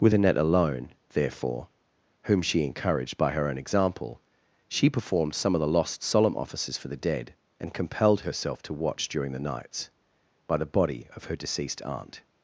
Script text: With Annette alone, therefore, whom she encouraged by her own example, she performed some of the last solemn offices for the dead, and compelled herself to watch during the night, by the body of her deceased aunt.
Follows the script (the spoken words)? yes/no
no